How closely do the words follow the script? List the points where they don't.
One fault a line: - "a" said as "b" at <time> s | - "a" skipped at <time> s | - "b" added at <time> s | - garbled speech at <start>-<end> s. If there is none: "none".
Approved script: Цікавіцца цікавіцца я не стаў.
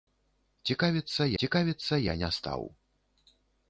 none